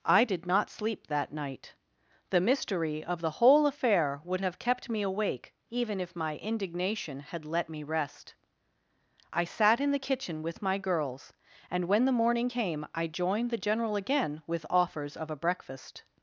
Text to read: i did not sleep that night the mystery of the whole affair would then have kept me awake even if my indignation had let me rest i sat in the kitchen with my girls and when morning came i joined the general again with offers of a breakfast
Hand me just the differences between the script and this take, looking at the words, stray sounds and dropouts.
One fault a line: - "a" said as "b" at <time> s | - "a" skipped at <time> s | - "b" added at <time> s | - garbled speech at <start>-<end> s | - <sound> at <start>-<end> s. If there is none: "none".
- "then" skipped at 4.4 s
- "the" added at 12.1 s